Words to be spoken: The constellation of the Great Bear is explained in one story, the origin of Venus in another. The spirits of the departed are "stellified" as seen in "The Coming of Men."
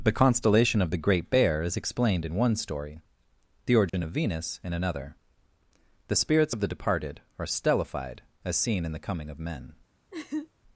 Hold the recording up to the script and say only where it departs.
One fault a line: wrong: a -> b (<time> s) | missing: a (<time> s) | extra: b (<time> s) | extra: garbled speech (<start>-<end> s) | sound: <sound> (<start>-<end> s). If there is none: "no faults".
sound: dropout (3.9-3.9 s)
sound: laugh (10.1-10.5 s)